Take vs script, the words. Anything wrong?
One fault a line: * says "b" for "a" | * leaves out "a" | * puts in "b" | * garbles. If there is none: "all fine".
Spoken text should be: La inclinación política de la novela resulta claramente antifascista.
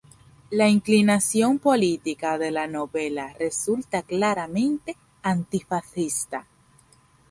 all fine